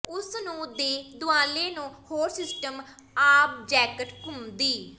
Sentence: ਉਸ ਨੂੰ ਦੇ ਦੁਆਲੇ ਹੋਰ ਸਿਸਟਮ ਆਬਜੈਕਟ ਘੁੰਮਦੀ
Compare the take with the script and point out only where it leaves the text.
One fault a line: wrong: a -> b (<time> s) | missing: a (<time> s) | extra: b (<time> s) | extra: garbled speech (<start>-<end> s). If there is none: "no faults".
extra: ਨੂੰ (1.7 s)